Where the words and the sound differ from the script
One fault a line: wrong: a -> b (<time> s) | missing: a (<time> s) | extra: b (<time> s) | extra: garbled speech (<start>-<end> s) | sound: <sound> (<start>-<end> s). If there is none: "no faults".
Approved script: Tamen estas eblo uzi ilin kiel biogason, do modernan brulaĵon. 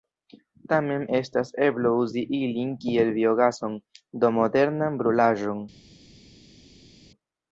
no faults